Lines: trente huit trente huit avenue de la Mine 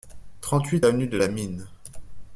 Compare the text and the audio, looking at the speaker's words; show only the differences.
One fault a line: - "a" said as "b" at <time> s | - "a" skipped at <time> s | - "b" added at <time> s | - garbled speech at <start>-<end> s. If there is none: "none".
- "trente huit" skipped at 0.9 s